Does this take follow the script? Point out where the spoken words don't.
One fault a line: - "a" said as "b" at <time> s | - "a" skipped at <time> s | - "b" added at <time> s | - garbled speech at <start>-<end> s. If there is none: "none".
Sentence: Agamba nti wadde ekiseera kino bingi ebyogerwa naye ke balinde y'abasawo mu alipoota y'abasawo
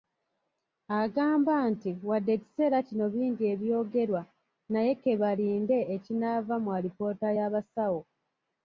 - "y'abasawo" said as "ekinaava" at 6.0 s